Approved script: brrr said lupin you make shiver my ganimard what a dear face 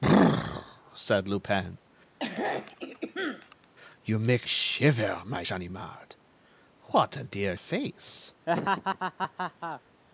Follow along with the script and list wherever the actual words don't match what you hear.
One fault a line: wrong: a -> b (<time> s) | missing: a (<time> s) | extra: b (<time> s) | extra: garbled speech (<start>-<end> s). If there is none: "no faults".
no faults